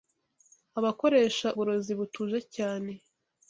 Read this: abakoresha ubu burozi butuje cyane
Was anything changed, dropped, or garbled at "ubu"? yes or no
yes